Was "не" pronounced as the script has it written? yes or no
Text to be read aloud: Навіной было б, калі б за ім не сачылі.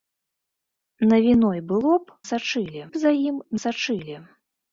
no